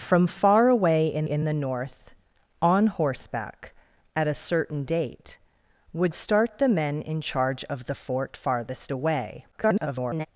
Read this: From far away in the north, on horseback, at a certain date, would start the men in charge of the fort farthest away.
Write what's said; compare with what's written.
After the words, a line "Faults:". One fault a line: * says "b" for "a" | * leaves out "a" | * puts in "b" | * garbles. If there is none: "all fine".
From far away in in the north, on horseback, at a certain date, would start the men in charge of the fort farthest away. [garbled]
Faults:
* puts in "in"
* garbles